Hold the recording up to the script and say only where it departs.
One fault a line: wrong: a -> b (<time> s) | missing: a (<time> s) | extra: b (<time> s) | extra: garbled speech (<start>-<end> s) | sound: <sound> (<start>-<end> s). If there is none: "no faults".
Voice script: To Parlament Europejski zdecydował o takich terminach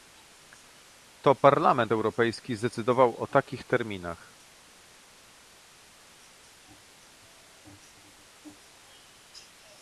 no faults